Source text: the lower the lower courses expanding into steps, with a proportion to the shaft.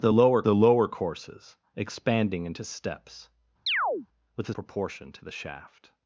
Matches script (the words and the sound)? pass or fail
fail